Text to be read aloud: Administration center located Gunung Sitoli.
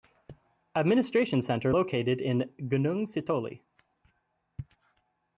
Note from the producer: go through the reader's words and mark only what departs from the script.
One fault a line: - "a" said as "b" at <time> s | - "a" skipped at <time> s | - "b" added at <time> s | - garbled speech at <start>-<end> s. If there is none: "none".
- "in" added at 2.2 s